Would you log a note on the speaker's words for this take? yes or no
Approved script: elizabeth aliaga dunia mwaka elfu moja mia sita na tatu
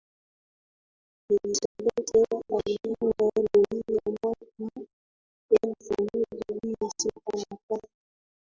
no